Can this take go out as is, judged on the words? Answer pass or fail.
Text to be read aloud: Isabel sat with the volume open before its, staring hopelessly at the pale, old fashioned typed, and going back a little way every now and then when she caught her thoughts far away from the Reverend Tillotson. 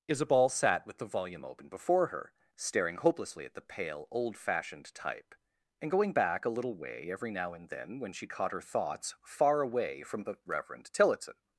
fail